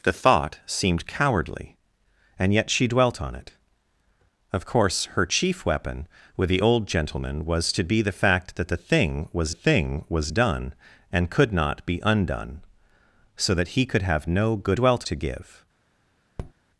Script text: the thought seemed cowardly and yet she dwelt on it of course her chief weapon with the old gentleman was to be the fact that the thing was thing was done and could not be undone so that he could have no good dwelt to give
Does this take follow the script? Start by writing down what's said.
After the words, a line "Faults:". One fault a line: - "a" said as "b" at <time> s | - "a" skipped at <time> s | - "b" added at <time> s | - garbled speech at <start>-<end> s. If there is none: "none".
the thought seemed cowardly and yet she dwelt on it of course her chief weapon with the old gentleman was to be the fact that the thing was thing was done and could not be undone so that he could have no good dwelt to give
Faults:
none